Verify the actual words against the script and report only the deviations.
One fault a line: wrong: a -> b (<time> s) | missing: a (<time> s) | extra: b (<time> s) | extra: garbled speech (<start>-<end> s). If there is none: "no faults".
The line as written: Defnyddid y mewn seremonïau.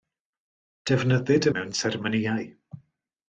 no faults